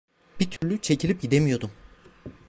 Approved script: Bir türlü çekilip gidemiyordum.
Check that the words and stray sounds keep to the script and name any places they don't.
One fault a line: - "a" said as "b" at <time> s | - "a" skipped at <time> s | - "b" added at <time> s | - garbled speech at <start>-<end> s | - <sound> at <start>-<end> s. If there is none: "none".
- dropout at 0.6-0.6 s